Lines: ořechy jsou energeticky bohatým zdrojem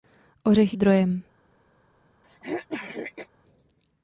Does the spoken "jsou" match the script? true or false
false